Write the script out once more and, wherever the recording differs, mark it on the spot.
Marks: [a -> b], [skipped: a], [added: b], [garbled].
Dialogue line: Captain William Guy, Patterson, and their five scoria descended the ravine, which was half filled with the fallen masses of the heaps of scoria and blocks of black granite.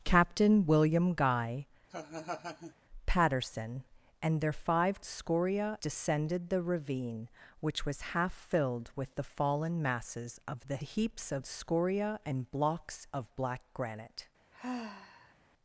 Captain William Guy, Patterson, and their five scoria descended the ravine, which was half filled with the fallen masses of the heaps of scoria and blocks of black granite.